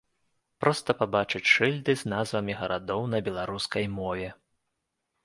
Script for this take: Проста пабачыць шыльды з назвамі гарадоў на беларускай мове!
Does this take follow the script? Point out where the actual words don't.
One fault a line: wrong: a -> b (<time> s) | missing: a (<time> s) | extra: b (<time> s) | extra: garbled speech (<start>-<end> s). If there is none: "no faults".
no faults